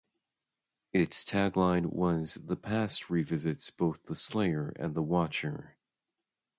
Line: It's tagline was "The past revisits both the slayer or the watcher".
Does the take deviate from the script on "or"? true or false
true